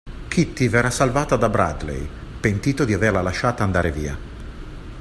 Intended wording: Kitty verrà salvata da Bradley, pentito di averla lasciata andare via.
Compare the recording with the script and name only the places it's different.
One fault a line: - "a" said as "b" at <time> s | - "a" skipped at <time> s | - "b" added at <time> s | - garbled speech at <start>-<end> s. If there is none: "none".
none